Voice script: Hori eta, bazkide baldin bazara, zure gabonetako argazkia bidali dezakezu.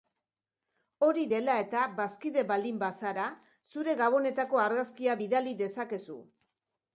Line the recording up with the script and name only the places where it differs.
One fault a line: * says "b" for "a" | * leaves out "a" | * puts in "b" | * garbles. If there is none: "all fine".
* puts in "dela"